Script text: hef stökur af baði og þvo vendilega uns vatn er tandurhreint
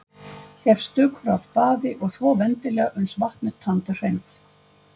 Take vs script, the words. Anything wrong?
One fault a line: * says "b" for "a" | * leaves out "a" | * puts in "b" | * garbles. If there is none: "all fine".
all fine